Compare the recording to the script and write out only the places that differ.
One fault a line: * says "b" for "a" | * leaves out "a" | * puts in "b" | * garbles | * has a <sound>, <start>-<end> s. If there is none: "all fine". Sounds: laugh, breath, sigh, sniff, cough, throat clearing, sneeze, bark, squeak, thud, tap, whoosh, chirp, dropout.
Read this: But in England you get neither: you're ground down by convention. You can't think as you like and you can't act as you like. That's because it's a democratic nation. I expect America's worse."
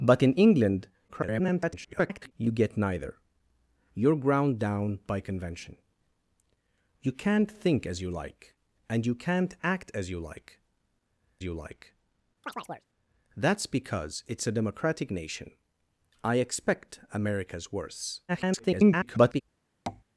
* garbles
* puts in "you like"
* has a chirp, 12.4-12.9 s
* garbles
* has a tap, 19.9-20.0 s